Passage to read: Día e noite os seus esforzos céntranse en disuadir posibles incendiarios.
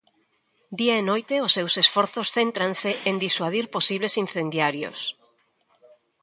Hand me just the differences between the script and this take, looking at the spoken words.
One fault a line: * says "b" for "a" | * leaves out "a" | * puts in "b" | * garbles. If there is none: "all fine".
all fine